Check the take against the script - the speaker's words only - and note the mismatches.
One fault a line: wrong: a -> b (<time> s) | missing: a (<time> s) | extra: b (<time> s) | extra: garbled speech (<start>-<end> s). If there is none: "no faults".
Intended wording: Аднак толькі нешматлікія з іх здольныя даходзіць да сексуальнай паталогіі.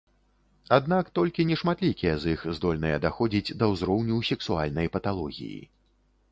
extra: ўзроўню (3.8 s)